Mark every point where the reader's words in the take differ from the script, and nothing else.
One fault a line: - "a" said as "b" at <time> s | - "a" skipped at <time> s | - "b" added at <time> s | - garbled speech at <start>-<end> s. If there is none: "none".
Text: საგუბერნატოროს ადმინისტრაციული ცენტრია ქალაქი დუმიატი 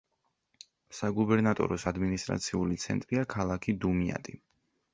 none